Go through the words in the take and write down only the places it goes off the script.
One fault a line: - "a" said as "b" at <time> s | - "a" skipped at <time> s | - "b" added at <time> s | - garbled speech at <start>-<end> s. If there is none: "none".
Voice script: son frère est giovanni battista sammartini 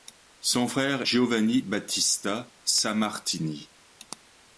- "est" skipped at 1.0 s